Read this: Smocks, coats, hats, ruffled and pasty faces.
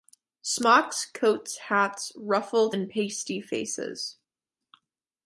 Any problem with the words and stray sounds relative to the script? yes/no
no